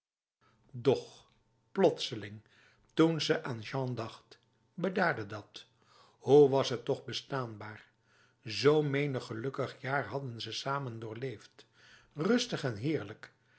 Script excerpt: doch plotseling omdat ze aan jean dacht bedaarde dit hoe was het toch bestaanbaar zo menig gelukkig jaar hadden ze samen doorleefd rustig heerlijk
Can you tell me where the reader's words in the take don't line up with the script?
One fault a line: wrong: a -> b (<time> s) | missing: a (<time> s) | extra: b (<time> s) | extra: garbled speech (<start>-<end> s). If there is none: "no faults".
wrong: omdat -> toen (2.9 s)
wrong: dit -> dat (5.2 s)
extra: en (12.6 s)